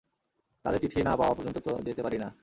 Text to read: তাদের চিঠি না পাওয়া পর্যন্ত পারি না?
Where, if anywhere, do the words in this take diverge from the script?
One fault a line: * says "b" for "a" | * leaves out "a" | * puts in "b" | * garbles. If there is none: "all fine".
* puts in "তো যেতে"